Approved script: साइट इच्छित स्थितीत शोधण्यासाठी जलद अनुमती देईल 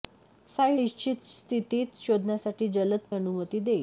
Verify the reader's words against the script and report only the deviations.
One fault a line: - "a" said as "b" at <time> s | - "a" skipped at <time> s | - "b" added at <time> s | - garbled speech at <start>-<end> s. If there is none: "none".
none